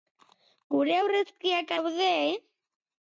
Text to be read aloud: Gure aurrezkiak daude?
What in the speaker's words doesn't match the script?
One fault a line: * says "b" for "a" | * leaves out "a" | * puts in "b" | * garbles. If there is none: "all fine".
all fine